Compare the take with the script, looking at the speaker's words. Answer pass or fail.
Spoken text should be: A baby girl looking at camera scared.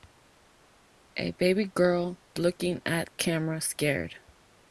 pass